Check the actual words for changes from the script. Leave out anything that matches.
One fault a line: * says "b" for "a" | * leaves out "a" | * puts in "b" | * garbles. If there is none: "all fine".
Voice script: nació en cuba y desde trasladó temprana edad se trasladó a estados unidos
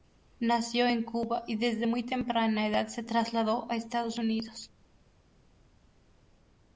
* says "muy" for "trasladó"